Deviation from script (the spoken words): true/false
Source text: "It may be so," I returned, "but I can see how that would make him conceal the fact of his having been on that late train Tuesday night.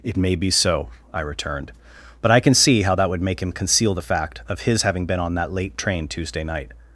false